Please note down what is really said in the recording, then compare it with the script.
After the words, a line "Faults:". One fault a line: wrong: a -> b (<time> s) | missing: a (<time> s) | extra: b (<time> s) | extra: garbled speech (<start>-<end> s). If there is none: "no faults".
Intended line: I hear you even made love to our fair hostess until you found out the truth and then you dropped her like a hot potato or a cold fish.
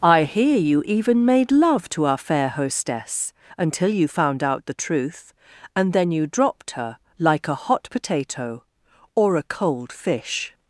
I hear you even made love to our fair hostess until you found out the truth and then you dropped her like a hot potato or a cold fish.
Faults:
no faults